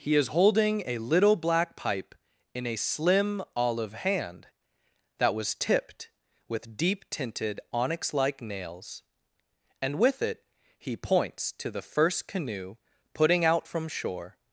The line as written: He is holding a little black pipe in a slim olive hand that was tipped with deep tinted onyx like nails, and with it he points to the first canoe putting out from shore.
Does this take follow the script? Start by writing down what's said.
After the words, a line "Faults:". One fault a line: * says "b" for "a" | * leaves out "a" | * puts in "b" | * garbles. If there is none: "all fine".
He is holding a little black pipe in a slim olive hand that was tipped with deep tinted onyx like nails, and with it he points to the first canoe putting out from shore.
Faults:
all fine